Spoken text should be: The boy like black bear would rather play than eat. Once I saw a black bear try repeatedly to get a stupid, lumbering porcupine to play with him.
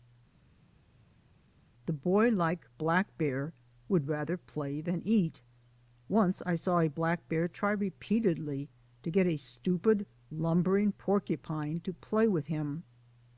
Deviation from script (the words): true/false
false